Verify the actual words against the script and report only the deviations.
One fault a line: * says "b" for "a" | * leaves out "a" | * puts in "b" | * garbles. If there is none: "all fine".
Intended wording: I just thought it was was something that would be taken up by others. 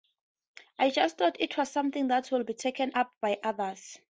* leaves out "was"